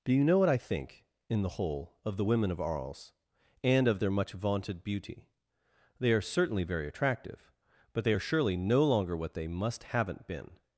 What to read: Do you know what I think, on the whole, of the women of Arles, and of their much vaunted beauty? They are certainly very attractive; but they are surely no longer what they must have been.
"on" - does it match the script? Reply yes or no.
no